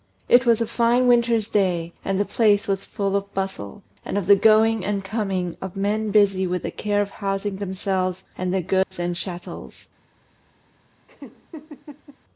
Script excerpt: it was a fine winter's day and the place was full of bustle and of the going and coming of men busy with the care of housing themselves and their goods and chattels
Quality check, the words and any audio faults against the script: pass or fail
fail